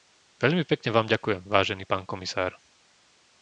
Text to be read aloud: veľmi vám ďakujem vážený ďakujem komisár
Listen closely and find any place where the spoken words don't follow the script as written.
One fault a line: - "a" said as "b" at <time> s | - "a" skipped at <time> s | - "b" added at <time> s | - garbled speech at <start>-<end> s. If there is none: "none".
- "pekne" added at 0.7 s
- "ďakujem" said as "pán" at 1.8 s